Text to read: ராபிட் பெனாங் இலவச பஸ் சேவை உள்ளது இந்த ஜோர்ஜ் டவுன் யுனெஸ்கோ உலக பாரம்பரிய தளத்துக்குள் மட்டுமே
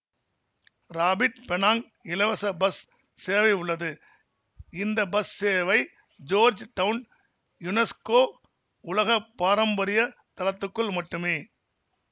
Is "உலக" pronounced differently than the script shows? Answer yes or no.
no